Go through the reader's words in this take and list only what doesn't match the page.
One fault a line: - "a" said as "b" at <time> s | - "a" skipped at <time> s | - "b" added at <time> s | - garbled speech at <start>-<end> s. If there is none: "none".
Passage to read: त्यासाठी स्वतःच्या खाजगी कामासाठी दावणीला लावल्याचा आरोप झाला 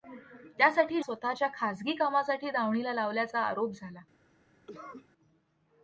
none